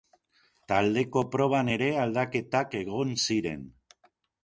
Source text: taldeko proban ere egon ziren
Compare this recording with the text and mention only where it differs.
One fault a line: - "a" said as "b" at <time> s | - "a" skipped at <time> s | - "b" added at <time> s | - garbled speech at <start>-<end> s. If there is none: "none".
- "aldaketak" added at 2.0 s